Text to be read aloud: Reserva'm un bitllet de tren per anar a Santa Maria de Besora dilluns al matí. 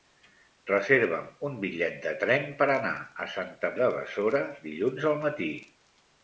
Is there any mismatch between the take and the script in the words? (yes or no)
yes